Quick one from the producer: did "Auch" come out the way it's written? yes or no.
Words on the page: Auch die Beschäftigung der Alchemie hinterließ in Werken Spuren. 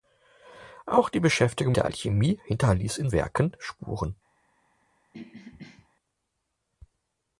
yes